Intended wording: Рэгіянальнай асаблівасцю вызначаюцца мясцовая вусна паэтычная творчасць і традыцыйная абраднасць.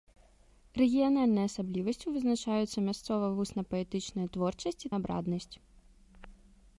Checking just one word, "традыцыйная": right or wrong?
wrong